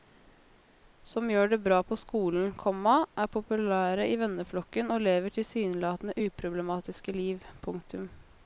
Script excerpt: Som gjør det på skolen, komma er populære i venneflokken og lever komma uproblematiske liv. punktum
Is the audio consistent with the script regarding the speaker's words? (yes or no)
no